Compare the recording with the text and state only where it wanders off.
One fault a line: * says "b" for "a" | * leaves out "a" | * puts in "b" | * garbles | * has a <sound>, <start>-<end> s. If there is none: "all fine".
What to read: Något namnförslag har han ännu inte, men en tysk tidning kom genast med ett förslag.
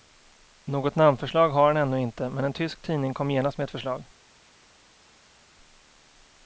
all fine